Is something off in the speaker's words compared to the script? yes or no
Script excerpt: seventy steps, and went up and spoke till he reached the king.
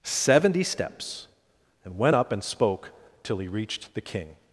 no